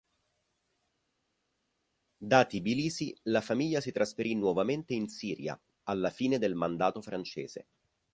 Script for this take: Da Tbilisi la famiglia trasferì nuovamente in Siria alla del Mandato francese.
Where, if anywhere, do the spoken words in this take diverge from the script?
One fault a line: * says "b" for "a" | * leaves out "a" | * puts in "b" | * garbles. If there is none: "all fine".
* puts in "si"
* puts in "fine"